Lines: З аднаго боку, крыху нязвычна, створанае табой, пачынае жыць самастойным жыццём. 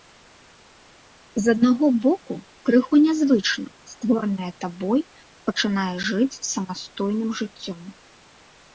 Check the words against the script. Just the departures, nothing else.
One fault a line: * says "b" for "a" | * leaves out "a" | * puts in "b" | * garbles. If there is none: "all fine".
all fine